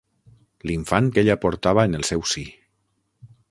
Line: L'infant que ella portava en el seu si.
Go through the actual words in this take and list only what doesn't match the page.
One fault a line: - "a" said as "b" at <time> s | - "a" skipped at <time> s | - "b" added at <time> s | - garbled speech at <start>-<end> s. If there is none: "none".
none